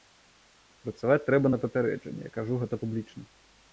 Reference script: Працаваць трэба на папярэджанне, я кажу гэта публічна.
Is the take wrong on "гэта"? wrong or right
right